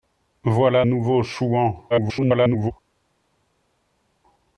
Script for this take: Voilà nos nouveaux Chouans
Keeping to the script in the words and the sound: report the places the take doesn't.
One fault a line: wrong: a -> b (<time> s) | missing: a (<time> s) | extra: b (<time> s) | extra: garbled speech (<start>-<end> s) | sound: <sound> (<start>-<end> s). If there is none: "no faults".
missing: nos (0.8 s)
extra: garbled speech (1.9-2.7 s)